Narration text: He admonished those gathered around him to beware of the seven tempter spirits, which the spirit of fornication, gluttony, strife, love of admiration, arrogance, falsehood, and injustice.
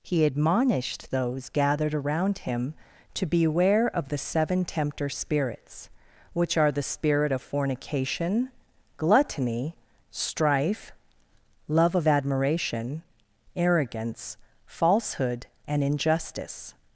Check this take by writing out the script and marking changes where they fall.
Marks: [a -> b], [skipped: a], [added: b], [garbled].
He admonished those gathered around him to beware of the seven tempter spirits, which [added: are] the spirit of fornication, gluttony, strife, love of admiration, arrogance, falsehood, and injustice.